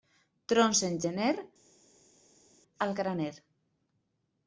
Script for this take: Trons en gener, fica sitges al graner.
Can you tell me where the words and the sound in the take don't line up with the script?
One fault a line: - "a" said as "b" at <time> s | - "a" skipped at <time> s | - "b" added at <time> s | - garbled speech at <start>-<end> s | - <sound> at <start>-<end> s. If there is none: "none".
- "fica sitges" skipped at 1.3 s